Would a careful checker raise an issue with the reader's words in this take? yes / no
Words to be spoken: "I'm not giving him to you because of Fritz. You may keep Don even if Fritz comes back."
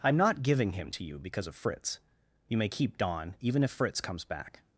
no